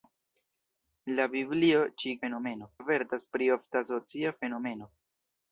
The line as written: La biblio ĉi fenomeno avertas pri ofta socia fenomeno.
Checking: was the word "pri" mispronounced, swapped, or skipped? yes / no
no